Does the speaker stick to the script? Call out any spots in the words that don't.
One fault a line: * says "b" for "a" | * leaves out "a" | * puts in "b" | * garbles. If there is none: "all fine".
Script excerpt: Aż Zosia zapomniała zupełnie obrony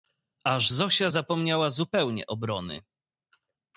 all fine